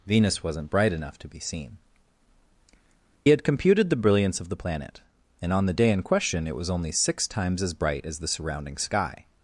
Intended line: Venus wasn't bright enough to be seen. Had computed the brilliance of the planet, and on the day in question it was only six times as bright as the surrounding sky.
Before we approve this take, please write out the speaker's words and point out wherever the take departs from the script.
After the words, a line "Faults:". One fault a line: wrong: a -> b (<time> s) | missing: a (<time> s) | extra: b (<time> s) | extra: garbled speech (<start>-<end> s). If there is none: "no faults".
Venus wasn't bright enough to be seen. Had computed the brilliance of the planet, and on the day in question it was only six times as bright as the surrounding sky.
Faults:
no faults